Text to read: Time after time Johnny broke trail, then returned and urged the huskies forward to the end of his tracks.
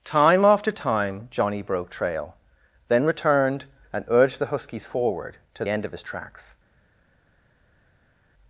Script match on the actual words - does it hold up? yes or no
no